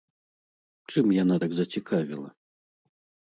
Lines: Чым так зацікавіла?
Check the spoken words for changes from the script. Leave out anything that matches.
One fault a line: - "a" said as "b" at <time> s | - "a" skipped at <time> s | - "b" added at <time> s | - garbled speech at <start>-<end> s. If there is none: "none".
- "яна" added at 1.2 s